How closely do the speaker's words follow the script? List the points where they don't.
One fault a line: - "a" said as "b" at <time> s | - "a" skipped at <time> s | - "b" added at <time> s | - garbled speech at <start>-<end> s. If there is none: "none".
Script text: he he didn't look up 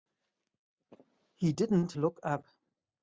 - "he" skipped at 1.5 s